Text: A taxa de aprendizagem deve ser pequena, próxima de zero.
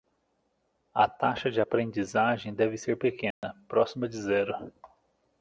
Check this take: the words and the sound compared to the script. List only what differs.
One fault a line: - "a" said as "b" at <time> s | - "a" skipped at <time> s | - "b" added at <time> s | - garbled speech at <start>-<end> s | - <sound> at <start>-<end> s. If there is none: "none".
- dropout at 3.3-3.4 s